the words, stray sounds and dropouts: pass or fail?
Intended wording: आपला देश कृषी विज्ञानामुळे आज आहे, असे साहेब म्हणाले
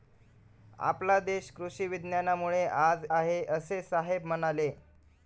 pass